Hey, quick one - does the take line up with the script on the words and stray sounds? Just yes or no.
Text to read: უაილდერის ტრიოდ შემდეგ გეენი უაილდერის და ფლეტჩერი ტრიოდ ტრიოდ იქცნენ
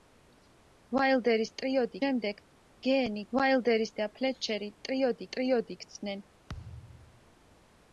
no